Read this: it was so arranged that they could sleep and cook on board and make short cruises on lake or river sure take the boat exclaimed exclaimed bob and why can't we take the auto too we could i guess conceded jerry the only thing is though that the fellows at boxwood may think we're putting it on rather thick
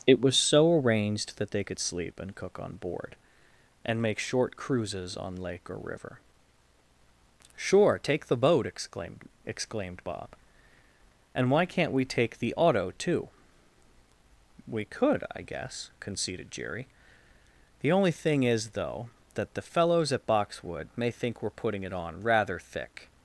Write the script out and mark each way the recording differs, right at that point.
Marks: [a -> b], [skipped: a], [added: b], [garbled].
it was so arranged that they could sleep and cook on board and make short cruises on lake or river sure take the boat exclaimed exclaimed bob and why can't we take the auto too we could i guess conceded jerry the only thing is though that the fellows at boxwood may think we're putting it on rather thick